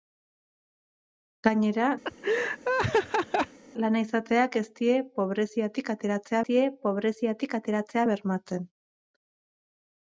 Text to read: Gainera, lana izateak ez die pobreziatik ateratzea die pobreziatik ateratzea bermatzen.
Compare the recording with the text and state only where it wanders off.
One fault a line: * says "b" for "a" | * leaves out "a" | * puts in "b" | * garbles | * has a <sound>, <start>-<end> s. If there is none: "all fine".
* has a laugh, 2.0-3.6 s